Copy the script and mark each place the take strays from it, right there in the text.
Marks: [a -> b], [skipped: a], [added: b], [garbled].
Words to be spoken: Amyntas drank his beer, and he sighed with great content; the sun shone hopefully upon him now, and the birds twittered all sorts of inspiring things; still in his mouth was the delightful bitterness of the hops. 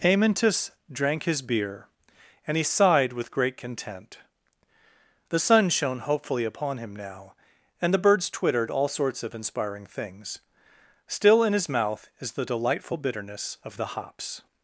Amyntas drank his beer, and he sighed with great content; the sun shone hopefully upon him now, and the birds twittered all sorts of inspiring things; still in his mouth [was -> is] the delightful bitterness of the hops.